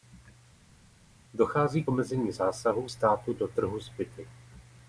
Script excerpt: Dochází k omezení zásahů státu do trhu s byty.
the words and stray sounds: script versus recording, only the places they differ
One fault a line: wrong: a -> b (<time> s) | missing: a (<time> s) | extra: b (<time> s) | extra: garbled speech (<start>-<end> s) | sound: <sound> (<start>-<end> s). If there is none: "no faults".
no faults